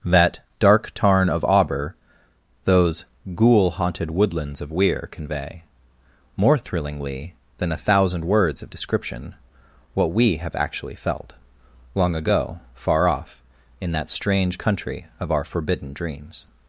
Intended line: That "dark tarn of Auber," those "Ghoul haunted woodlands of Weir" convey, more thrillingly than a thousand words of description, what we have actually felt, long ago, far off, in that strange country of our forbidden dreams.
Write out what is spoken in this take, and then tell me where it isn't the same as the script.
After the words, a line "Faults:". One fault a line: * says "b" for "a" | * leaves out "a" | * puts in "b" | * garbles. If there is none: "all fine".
That "dark tarn of Auber," those "Ghoul haunted woodlands of Weir" convey, more thrillingly than a thousand words of description, what we have actually felt, long ago, far off, in that strange country of our forbidden dreams.
Faults:
all fine